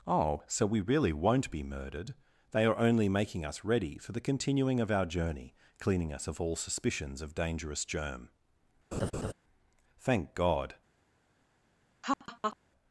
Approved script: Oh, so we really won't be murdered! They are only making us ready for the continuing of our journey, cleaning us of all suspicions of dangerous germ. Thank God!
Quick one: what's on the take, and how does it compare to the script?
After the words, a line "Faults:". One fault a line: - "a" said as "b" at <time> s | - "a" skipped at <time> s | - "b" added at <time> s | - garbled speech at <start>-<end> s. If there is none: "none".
Oh, so we really won't be murdered! They are only making us ready for the continuing of our journey, cleaning us of all suspicions of dangerous germ. Thank God!
Faults:
none